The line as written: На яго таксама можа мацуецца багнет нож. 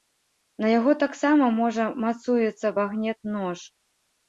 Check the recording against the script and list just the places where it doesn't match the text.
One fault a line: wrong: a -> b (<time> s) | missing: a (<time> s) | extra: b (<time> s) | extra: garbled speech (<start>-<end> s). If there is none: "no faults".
no faults